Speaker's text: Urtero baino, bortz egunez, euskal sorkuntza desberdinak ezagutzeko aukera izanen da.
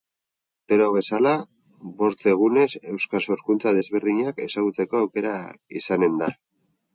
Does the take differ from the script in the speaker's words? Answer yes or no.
yes